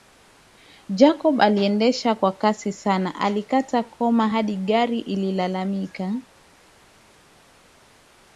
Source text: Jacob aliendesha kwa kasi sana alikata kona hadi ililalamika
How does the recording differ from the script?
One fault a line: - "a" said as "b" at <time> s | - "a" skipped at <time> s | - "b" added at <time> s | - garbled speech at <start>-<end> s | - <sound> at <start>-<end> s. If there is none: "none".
- "gari" added at 4.6 s